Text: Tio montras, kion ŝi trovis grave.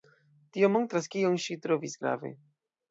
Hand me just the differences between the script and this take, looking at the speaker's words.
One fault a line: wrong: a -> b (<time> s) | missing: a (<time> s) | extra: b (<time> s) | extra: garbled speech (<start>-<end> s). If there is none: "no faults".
no faults